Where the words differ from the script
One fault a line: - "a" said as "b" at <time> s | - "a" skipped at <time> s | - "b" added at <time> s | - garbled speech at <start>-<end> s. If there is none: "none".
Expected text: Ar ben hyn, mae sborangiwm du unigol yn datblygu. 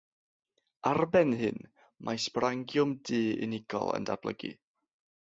none